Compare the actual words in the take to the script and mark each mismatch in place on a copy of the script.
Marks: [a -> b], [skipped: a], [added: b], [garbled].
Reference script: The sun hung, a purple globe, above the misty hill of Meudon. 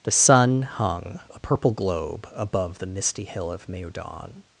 The sun hung, a purple globe, above the misty hill of Meudon.